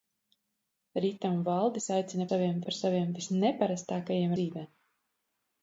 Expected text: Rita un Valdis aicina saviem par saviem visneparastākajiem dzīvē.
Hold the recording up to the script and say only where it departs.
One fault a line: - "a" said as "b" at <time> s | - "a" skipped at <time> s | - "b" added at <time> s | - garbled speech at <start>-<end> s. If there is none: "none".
none